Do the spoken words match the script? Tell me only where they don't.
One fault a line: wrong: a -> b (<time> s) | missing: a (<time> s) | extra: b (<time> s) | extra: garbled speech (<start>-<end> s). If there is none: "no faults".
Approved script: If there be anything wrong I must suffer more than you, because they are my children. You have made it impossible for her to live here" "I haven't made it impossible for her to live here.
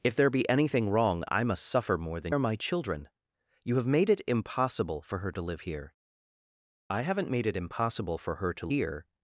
missing: you because they (2.4 s)
missing: live (8.7 s)